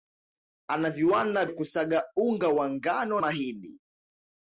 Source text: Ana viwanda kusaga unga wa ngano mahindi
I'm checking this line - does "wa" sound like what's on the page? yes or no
yes